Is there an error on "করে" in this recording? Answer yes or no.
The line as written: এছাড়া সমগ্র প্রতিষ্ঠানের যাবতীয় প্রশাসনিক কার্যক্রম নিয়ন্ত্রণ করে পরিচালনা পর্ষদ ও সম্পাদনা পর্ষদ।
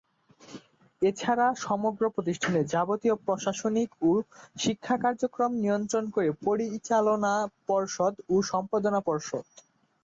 no